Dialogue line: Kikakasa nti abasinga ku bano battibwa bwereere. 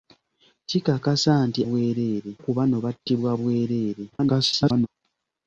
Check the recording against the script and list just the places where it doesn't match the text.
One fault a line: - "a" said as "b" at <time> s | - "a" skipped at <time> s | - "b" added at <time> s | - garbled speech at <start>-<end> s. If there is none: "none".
- "abasinga" said as "bwereere" at 1.7 s
- garbled speech at 4.1-4.9 s